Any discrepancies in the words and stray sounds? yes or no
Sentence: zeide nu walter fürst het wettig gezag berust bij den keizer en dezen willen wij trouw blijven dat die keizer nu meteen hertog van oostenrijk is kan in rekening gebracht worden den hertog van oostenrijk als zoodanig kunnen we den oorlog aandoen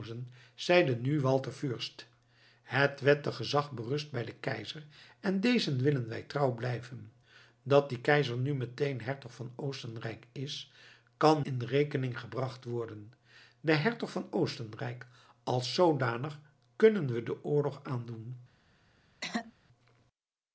yes